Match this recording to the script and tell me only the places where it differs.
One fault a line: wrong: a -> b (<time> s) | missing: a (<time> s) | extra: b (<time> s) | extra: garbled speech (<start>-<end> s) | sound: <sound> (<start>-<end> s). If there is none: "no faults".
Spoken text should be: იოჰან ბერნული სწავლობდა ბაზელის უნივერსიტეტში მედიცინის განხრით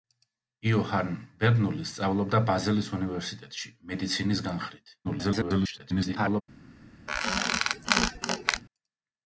extra: garbled speech (5.0-6.4 s)
sound: squeak (7.1-8.6 s)